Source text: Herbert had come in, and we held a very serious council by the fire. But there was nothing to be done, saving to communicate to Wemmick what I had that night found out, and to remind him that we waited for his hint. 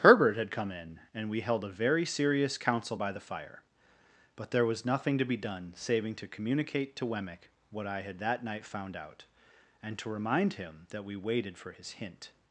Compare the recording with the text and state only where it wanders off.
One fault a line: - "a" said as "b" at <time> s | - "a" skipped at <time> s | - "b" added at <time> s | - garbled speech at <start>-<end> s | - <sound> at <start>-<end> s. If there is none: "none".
none